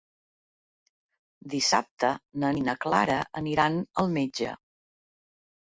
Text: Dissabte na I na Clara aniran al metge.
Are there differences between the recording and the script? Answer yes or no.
no